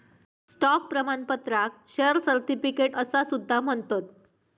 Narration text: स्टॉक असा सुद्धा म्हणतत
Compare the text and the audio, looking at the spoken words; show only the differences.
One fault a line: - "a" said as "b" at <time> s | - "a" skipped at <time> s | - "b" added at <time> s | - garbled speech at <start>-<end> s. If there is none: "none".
- "प्रमाणपत्राक शेअर सर्टिफिकेट" added at 0.9 s